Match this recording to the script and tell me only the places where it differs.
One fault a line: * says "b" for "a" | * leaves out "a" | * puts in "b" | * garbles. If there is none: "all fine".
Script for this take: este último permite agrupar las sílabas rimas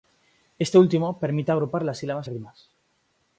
all fine